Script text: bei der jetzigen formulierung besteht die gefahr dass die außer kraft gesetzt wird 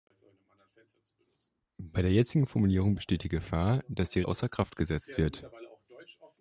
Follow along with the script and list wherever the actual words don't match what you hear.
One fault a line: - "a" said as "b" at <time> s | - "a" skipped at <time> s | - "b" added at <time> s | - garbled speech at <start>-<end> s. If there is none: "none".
none